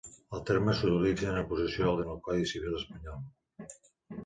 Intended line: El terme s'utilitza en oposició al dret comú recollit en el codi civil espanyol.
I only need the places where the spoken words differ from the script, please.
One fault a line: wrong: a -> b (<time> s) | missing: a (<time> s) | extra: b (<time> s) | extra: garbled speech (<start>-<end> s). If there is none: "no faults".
missing: dret comú recollit (2.0 s)